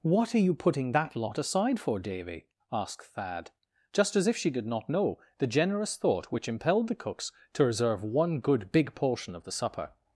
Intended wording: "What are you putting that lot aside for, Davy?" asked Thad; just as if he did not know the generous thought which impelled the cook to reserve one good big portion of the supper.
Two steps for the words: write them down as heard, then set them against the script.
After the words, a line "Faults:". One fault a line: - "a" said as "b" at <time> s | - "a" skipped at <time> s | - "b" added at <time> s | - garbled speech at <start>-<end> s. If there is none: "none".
"What are you putting that lot aside for, Davy?" asked Thad; just as if she did not know the generous thought which impelled the cooks to reserve one good big portion of the supper.
Faults:
- "he" said as "she" at 4.3 s
- "cook" said as "cooks" at 7.0 s